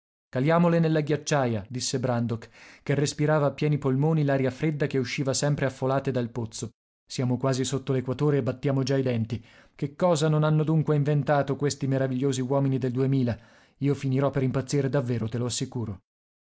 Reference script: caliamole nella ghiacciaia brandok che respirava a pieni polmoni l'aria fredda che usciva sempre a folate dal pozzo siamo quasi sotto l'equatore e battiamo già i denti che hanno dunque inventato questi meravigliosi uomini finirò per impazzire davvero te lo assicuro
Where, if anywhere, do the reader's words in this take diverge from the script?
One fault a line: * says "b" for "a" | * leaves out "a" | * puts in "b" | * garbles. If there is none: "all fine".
* puts in "disse"
* puts in "cosa non"
* puts in "del duemila io"